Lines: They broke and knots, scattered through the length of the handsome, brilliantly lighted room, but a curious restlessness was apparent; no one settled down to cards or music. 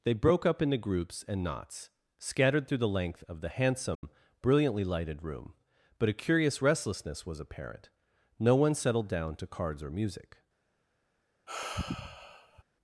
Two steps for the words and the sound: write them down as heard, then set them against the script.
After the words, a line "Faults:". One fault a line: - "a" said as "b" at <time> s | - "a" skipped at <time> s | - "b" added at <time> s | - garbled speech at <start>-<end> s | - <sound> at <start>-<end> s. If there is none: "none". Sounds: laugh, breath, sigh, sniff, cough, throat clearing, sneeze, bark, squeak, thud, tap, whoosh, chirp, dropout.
They broke up into groups and knots, scattered through the length of the handsome, brilliantly lighted room, but a curious restlessness was apparent; no one settled down to cards or music.
Faults:
- "up into groups" added at 0.5 s
- dropout at 3.9-4.0 s
- sigh at 11.5-12.6 s